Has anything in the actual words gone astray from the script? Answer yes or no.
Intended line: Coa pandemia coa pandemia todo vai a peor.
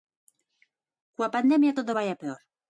yes